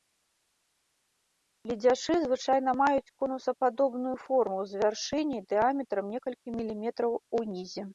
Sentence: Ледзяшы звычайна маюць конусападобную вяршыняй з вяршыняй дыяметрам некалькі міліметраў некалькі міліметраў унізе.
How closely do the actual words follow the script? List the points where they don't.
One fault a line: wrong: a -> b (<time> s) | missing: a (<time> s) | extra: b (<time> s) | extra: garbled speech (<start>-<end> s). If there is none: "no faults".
wrong: вяршыняй -> форму (4.2 s)
missing: некалькі міліметраў (7.1 s)